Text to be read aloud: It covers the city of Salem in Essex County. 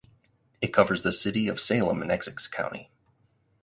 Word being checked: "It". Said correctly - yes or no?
yes